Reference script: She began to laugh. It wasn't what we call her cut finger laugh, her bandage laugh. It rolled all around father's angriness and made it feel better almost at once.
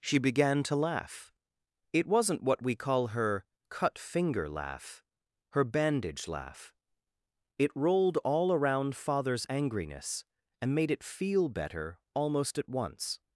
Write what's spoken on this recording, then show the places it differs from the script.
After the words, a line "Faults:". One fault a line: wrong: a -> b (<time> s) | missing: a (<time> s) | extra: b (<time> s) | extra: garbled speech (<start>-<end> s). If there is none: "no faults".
She began to laugh. It wasn't what we call her cut finger laugh, her bandage laugh. It rolled all around father's angriness and made it feel better almost at once.
Faults:
no faults